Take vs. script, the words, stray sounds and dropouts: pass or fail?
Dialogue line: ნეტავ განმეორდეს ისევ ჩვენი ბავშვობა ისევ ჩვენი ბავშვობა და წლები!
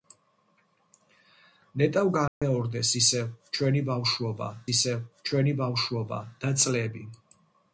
fail